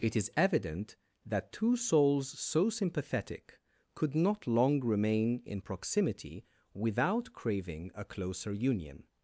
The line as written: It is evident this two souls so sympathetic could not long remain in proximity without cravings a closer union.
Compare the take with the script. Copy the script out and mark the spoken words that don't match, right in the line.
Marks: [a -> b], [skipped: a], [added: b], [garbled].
It is evident [this -> that] two souls so sympathetic could not long remain in proximity without [cravings -> craving] a closer union.